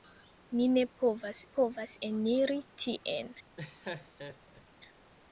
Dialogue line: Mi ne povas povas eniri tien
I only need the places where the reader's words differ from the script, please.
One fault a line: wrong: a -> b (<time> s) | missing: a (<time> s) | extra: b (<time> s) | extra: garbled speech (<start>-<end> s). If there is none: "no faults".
no faults